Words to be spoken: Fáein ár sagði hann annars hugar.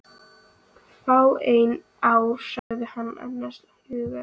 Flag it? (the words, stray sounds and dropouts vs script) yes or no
yes